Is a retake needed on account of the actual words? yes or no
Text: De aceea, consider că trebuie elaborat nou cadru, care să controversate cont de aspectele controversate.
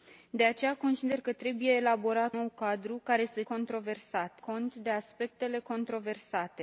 no